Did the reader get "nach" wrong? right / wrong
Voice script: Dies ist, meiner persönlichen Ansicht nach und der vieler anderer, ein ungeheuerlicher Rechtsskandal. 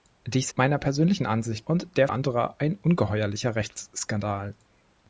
wrong